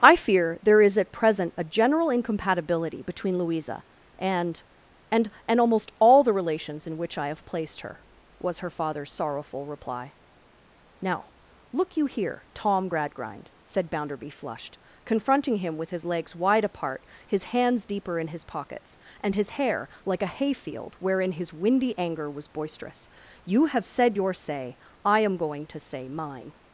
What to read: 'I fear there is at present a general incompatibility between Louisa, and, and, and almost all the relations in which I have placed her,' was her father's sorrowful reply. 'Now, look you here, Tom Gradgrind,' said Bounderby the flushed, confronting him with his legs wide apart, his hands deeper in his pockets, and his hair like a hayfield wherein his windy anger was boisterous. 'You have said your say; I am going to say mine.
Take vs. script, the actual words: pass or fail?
fail